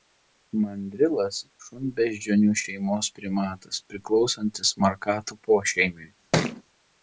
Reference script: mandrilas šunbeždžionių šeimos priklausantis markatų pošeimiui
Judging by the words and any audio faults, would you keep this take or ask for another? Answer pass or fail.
fail